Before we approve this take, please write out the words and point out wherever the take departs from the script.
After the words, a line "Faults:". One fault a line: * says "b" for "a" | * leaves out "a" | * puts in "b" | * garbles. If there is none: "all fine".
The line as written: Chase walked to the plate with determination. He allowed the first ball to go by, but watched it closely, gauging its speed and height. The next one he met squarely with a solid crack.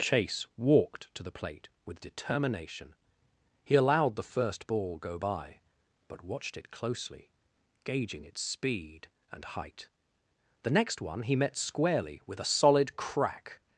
Chase walked to the plate with determination. He allowed the first ball go by, but watched it closely, gauging its speed and height. The next one he met squarely with a solid crack.
Faults:
* leaves out "to"